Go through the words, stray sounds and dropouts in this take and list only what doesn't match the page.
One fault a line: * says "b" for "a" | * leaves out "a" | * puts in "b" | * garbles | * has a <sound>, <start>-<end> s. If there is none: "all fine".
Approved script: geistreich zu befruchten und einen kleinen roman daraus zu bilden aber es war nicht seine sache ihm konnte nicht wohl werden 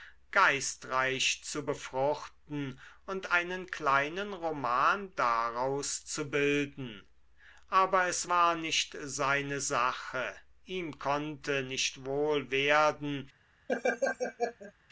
* has a laugh, 13.7-14.7 s